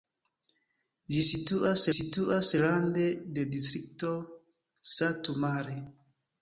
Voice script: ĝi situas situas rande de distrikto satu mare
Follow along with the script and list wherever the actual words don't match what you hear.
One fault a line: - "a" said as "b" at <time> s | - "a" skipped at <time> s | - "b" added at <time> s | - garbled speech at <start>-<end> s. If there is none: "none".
none